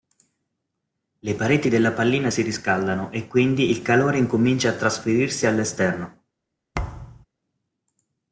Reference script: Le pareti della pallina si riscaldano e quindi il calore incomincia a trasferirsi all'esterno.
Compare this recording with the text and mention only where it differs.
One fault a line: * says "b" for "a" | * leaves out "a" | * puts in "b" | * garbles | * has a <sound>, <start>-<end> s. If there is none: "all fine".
* has a thud, 6.7-7.3 s